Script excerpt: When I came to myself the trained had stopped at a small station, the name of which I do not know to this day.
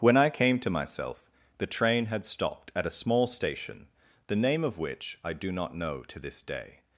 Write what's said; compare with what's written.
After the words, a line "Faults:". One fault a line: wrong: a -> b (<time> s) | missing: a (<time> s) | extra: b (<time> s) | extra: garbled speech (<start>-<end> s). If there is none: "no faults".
When I came to myself the train had stopped at a small station, the name of which I do not know to this day.
Faults:
wrong: trained -> train (1.7 s)